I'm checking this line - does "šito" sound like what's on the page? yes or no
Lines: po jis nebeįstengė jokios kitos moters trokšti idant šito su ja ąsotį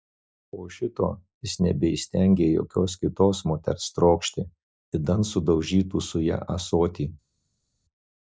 no